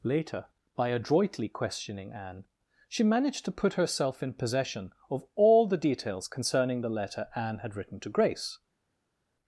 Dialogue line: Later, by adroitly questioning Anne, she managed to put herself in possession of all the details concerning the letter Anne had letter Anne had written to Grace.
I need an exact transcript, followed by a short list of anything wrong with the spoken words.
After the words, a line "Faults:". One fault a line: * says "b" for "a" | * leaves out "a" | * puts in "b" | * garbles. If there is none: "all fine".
Later, by adroitly questioning Anne, she managed to put herself in possession of all the details concerning the letter Anne had written to Grace.
Faults:
* leaves out "letter Anne had"